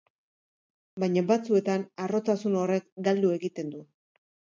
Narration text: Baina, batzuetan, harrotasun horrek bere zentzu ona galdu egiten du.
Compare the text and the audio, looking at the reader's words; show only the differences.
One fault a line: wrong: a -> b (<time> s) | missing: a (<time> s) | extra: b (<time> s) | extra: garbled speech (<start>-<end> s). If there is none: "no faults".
missing: bere zentzu ona (2.9 s)